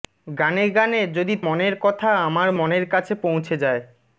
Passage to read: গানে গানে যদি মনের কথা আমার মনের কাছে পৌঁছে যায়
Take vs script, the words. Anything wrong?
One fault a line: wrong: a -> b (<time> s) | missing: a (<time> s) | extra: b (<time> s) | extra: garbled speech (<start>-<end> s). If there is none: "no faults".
no faults